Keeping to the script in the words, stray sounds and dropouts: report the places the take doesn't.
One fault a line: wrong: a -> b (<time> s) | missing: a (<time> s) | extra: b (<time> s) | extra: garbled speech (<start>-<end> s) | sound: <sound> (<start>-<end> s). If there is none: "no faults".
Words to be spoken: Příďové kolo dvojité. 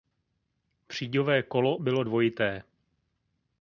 extra: bylo (1.8 s)